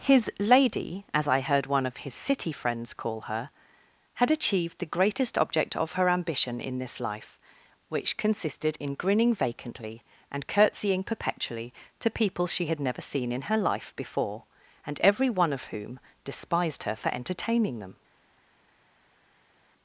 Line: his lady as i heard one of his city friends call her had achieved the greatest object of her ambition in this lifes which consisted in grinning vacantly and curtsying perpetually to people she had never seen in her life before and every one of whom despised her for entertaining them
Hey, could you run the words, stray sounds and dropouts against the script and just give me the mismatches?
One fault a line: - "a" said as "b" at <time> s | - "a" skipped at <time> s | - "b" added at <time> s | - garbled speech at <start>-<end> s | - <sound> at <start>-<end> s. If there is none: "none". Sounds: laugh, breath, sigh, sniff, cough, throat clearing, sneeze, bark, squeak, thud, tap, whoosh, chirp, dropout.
- "lifes" said as "life" at 7.0 s